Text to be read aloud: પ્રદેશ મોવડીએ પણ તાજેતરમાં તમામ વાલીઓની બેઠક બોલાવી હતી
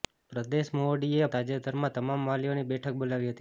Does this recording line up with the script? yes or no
no